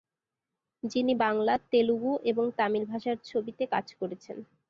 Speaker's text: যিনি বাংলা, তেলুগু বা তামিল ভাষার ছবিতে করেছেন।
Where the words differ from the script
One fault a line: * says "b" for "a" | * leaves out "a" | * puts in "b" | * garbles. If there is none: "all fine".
* says "এবং" for "বা"
* puts in "কাজ"